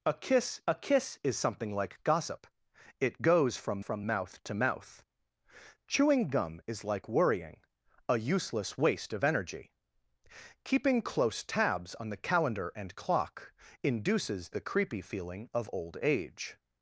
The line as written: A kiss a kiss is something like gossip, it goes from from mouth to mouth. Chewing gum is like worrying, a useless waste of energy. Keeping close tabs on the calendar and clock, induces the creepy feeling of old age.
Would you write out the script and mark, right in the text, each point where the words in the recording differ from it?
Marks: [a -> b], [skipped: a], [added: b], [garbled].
A kiss a kiss is something like gossip, it goes from from mouth to mouth. Chewing gum is like worrying, a useless waste of energy. Keeping close tabs on the calendar and clock, induces the creepy feeling of old age.